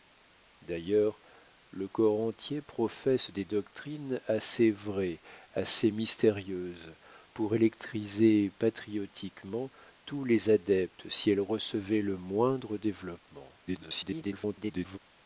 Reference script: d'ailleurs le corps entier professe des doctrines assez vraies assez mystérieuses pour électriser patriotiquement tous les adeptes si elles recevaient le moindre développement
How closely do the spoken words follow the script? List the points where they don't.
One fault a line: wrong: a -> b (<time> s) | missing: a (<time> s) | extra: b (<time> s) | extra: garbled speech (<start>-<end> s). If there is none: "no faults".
extra: garbled speech (13.7-15.0 s)